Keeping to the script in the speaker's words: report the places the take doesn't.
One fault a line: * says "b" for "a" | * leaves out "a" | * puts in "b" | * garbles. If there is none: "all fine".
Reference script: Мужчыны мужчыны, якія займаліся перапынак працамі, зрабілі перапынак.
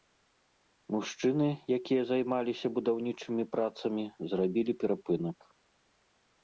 * leaves out "мужчыны"
* says "будаўнічымі" for "перапынак"